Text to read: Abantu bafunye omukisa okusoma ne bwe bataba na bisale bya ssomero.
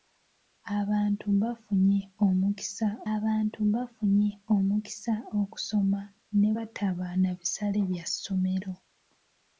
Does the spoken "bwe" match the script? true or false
false